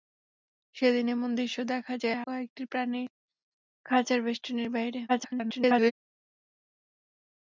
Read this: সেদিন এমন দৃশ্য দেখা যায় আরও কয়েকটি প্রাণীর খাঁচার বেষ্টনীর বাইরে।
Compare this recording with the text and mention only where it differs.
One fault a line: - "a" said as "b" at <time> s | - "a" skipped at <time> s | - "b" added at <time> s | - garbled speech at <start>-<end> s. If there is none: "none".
- "আরও" skipped at 2.2 s
- garbled speech at 5.1-5.9 s